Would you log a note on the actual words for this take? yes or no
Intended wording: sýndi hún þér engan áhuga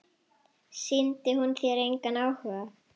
no